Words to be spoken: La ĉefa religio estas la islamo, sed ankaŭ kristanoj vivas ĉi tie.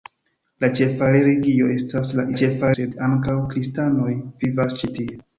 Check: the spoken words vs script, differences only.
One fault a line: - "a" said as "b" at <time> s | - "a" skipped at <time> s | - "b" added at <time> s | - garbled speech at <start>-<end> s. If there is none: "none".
- "islamo" said as "ĉefa" at 2.4 s